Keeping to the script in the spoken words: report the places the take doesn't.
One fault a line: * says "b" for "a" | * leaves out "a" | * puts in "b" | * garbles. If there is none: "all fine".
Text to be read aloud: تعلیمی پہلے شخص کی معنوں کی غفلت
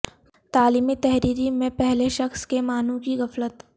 * puts in "تحریری میں"
* says "کے" for "کی"